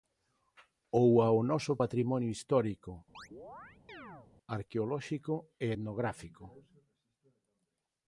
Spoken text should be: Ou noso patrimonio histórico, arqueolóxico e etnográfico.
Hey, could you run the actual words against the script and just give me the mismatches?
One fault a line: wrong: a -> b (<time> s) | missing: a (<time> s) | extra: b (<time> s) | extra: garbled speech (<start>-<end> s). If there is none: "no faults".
extra: ao (1.3 s)